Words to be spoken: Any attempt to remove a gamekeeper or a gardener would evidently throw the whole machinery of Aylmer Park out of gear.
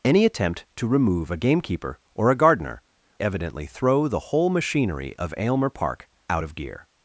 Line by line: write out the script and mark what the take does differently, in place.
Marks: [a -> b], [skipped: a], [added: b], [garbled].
Any attempt to remove a gamekeeper or a gardener [skipped: would] evidently throw the whole machinery of Aylmer Park out of gear.